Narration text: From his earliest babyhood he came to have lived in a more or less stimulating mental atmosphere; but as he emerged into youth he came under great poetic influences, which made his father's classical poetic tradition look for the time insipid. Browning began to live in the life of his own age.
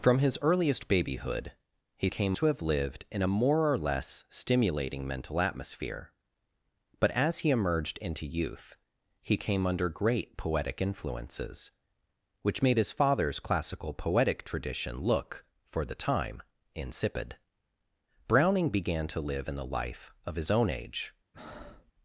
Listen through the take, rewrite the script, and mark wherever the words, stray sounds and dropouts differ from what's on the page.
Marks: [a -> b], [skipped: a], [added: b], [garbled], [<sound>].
From his earliest babyhood he came to have lived in a more or less stimulating mental atmosphere; but as he emerged into youth he came under great poetic influences, which made his father's classical poetic tradition look for the time insipid. Browning began to live in the life of his own age. [breath]